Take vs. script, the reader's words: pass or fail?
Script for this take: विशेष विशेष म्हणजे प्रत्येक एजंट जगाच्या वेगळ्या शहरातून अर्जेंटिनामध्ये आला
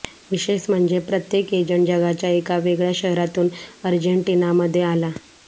fail